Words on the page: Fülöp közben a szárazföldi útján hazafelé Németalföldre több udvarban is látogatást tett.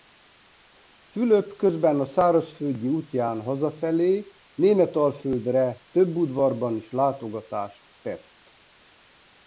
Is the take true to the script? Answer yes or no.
yes